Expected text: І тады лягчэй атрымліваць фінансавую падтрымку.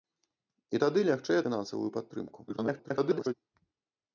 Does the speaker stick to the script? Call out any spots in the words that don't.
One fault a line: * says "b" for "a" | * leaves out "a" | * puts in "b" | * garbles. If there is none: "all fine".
* leaves out "атрымліваць"
* garbles